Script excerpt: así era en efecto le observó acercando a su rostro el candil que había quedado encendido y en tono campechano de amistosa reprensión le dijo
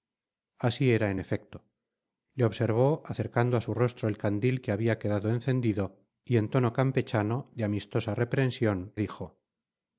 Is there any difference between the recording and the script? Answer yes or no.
yes